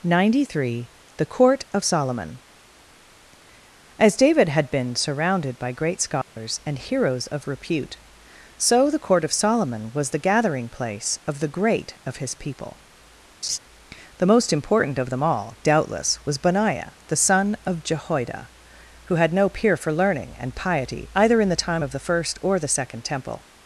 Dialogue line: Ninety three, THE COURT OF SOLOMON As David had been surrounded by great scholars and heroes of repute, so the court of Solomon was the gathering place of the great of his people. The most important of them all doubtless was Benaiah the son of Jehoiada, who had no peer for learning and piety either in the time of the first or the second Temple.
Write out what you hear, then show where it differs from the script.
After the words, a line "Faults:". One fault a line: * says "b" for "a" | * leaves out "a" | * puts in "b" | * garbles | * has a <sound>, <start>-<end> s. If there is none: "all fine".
Ninety three, THE COURT OF SOLOMON As David had been surrounded by great scholars and heroes of repute, so the court of Solomon was the gathering place of the great of his people. The most important of them all doubtless was Benaiah the son of Jehoiada, who had no peer for learning and piety either in the time of the first or the second Temple.
Faults:
* has a dropout, 6.2-6.4 s
* has a laugh, 13.4-13.6 s